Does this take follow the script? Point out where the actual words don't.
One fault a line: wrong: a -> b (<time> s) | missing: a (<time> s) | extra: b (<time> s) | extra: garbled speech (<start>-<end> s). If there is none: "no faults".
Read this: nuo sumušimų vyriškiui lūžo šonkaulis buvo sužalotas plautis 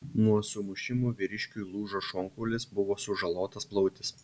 no faults